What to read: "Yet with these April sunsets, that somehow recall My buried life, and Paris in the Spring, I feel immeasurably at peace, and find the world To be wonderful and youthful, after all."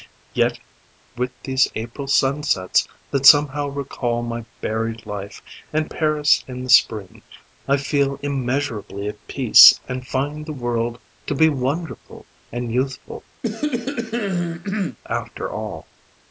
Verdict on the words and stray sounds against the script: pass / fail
fail